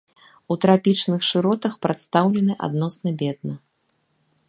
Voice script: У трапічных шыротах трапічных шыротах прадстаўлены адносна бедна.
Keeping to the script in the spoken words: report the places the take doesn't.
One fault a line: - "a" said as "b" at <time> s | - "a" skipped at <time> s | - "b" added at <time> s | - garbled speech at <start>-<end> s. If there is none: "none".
- "трапічных шыротах" skipped at 1.7 s